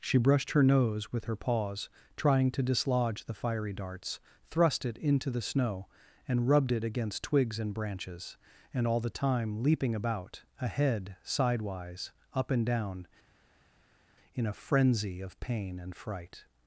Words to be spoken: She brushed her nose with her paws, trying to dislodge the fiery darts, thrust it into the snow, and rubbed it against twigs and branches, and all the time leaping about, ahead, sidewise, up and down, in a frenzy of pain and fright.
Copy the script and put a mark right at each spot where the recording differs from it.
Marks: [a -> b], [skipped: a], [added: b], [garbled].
She brushed her nose with her paws, trying to dislodge the fiery darts, thrust it into the snow, and rubbed it against twigs and branches, and all the time leaping about, ahead, sidewise, up and down, in a frenzy of pain and fright.